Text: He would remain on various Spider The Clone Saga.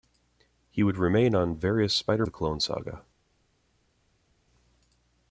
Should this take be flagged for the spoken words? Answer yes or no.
no